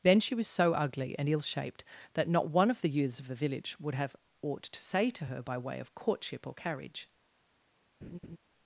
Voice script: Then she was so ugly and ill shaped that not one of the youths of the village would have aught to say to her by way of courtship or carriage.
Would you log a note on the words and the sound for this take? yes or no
yes